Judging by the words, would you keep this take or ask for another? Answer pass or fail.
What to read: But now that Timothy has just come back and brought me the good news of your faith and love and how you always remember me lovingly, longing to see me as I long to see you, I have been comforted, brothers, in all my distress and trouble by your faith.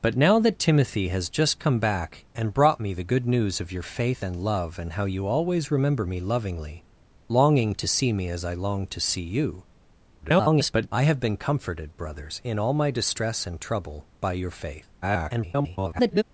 fail